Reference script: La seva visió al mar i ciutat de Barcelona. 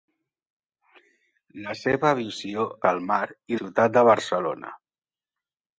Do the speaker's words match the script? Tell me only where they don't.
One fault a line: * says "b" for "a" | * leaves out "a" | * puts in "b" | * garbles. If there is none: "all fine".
all fine